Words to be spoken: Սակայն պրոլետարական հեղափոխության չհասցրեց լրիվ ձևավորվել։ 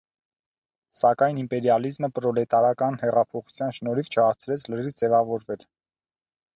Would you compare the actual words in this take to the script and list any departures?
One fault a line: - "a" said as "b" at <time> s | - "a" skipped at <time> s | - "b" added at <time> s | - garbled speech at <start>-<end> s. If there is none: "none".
- "իմպերիալիզմը" added at 1.4 s
- "շնորհիվ" added at 3.8 s